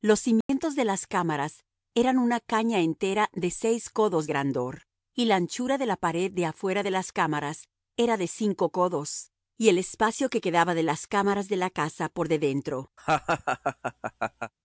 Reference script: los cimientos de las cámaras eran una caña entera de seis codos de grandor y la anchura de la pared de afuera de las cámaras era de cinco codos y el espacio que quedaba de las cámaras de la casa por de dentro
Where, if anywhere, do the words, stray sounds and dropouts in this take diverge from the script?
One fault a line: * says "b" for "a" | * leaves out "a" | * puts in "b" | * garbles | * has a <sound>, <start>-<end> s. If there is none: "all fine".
* has a dropout, 0.4-0.5 s
* leaves out "de"
* has a laugh, 13.0-14.5 s